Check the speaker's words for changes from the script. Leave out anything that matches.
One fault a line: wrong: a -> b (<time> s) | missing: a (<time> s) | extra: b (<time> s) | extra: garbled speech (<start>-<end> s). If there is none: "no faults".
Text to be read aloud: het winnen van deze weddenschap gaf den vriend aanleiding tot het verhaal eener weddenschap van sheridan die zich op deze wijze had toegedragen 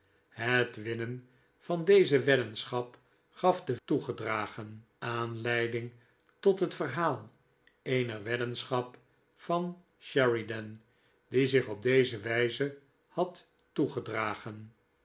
wrong: vriend -> toegedragen (3.8 s)